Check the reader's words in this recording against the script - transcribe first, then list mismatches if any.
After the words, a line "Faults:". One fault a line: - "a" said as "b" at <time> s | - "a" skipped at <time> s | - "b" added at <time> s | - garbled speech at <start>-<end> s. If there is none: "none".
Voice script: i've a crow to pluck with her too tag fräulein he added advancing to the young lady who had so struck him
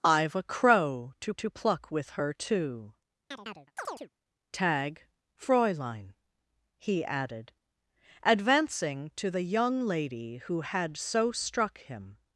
i've a crow to to pluck with her too tag fräulein he added advancing to the young lady who had so struck him
Faults:
- "to" added at 1.4 s